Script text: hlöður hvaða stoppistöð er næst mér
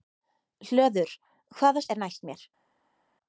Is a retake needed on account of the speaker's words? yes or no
yes